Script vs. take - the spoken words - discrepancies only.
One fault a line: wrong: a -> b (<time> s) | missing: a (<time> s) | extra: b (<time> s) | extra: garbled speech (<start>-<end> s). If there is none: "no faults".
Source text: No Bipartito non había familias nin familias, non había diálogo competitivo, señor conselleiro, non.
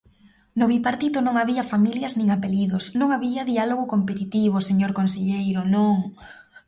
wrong: familias -> apelidos (2.4 s)